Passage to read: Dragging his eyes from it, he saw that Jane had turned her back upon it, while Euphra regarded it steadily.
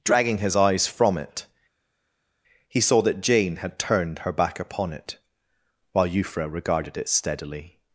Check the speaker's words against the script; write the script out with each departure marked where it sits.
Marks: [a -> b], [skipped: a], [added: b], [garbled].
Dragging his eyes from it, he saw that Jane had turned her back upon it, while Euphra regarded it steadily.